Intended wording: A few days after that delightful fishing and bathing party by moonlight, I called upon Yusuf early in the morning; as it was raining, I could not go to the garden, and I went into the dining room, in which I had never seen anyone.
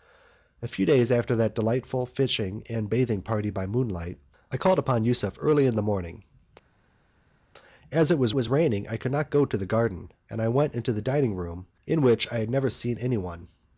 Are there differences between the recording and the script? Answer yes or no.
yes